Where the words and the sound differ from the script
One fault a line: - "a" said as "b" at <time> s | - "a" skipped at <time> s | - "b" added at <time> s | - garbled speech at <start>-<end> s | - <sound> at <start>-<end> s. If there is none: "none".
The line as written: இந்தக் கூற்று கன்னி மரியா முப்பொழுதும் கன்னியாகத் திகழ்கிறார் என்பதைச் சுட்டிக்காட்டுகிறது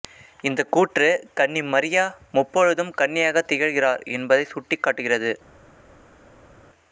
none